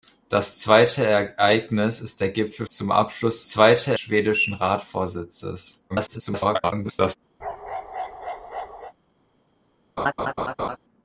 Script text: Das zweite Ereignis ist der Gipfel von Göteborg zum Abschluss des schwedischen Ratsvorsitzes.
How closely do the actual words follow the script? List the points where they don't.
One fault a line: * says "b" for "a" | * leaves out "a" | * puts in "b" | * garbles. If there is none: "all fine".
* leaves out "von Göteborg"
* says "zweite" for "des"
* garbles